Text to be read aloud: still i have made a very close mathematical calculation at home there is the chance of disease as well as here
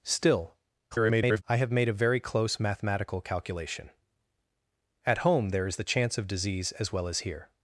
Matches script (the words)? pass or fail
fail